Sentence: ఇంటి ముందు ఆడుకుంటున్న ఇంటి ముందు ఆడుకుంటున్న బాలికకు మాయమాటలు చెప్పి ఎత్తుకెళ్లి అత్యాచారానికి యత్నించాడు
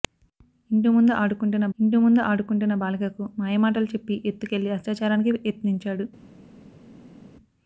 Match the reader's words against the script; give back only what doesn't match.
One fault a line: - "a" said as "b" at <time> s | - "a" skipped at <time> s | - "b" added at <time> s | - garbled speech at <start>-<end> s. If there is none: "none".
none